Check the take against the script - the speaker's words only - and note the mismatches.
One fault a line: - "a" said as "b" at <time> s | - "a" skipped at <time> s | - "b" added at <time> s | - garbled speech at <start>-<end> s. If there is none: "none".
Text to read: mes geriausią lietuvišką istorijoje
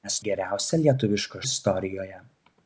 none